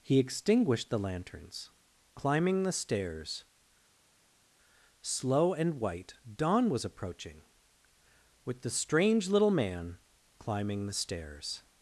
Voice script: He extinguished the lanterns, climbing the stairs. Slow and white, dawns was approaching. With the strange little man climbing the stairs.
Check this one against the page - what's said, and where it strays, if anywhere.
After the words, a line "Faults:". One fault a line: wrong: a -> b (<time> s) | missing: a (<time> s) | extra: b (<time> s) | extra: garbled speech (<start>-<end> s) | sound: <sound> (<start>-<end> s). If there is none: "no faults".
He extinguished the lanterns, climbing the stairs. Slow and white, dawn was approaching. With the strange little man climbing the stairs.
Faults:
wrong: dawns -> dawn (6.3 s)